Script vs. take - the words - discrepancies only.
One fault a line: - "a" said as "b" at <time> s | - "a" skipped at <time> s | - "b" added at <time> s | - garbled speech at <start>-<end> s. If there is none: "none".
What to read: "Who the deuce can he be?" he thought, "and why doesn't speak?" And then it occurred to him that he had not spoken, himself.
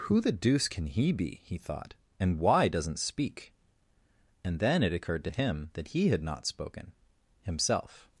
none